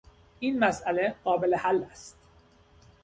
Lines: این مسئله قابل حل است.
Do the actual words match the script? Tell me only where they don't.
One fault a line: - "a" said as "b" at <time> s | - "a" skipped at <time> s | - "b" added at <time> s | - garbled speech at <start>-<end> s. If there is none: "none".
none